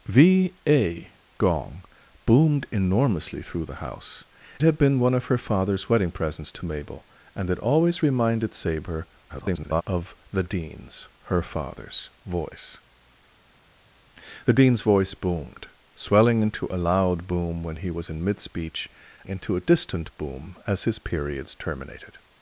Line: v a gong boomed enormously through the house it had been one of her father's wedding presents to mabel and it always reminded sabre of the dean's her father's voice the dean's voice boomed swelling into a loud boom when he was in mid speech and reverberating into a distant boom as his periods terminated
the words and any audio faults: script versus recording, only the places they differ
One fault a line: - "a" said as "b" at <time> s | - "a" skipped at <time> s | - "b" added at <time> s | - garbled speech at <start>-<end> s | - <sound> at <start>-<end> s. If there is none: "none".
- "it" skipped at 4.2 s
- garbled speech at 9.3-9.8 s
- "and reverberating" skipped at 18.9 s